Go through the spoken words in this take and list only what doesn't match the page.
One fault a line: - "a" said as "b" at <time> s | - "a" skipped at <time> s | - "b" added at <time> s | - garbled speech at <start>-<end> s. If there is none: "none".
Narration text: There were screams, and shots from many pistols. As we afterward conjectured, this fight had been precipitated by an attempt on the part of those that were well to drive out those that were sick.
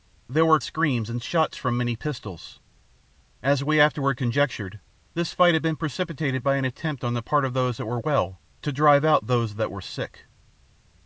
none